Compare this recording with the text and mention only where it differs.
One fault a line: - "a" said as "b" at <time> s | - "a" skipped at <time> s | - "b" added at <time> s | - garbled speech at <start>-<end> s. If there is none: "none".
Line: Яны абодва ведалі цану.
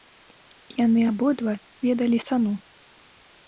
none